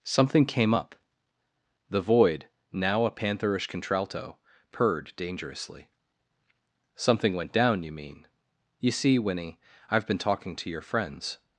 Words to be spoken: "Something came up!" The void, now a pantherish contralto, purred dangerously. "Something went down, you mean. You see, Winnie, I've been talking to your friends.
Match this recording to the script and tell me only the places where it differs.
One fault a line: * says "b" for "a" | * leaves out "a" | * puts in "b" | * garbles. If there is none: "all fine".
all fine